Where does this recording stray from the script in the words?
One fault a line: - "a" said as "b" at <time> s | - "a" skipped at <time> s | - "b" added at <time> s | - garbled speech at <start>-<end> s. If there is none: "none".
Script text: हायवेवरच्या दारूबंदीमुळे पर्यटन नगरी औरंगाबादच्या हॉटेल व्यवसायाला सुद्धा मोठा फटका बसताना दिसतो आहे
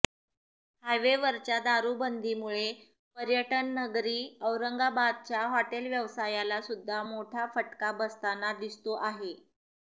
none